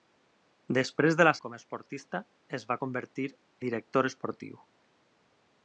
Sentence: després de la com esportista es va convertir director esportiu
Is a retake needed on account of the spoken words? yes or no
no